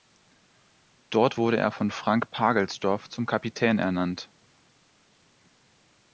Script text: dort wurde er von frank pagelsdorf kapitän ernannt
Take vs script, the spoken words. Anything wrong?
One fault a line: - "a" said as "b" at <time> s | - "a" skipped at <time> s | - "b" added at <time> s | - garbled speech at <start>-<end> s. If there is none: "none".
- "zum" added at 3.1 s